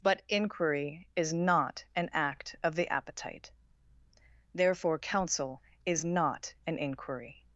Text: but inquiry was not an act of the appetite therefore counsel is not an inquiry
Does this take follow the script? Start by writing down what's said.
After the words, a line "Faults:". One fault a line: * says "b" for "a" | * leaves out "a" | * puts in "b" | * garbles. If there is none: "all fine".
but inquiry is not an act of the appetite therefore counsel is not an inquiry
Faults:
* says "is" for "was"